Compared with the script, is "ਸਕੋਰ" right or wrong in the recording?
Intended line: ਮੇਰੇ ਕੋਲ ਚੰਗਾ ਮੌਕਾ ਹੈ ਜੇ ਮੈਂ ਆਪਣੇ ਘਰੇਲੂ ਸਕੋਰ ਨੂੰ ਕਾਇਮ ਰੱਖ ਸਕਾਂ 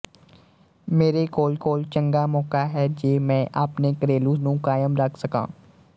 wrong